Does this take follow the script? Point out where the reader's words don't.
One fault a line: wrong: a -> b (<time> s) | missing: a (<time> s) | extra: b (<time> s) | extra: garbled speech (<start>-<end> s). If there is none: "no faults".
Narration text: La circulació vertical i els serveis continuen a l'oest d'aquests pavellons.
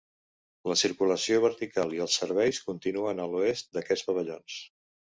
no faults